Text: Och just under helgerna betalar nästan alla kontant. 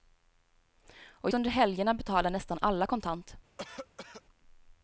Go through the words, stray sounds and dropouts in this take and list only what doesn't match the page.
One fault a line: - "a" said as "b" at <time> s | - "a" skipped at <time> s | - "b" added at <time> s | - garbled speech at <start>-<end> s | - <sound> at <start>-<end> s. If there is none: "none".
- "just" skipped at 1.3 s
- cough at 3.6-4.2 s